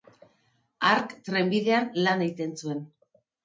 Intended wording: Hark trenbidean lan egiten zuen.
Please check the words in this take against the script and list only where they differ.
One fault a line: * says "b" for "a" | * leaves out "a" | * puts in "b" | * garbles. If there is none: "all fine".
all fine